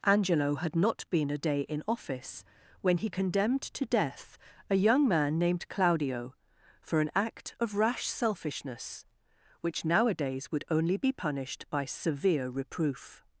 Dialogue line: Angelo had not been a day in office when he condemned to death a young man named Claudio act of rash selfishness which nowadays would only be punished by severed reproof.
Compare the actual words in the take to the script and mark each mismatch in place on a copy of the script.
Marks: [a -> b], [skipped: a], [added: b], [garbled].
Angelo had not been a day in office when he condemned to death a young man named Claudio [added: for an] act of rash selfishness which nowadays would only be punished by [severed -> severe] reproof.